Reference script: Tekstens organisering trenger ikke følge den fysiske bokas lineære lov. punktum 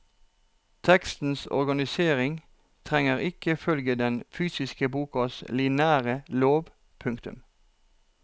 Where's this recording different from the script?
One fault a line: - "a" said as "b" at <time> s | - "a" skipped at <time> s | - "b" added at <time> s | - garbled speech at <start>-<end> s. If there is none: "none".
none